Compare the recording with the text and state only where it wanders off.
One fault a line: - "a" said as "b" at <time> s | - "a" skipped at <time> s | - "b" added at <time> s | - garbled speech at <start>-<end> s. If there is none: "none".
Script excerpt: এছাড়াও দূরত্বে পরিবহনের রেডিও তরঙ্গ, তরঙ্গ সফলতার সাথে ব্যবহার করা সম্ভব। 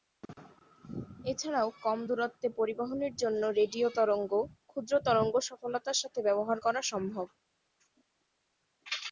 - "কম" added at 1.8 s
- "জন্য" added at 3.2 s
- "ক্ষুদ্র" added at 4.7 s